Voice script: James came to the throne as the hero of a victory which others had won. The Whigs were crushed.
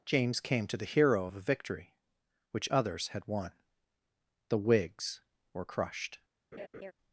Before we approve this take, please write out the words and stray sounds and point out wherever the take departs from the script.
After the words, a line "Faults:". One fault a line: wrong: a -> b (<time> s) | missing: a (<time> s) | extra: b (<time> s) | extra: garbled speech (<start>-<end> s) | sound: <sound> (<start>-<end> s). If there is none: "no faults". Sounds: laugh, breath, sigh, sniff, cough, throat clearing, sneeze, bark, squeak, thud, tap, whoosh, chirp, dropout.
James came to the hero of a victory which others had won. The Whigs were crushed.
Faults:
missing: throne as the (0.8 s)
sound: laugh (6.5-6.9 s)